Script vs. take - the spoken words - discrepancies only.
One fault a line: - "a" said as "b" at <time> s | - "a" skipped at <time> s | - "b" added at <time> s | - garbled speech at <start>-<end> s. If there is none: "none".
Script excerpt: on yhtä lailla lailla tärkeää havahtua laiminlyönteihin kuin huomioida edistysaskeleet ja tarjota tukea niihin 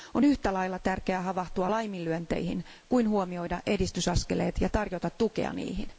- "lailla" skipped at 0.8 s